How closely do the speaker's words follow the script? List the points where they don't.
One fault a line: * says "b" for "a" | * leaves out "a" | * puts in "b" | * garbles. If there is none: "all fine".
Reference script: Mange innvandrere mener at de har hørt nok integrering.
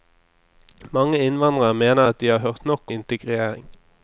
all fine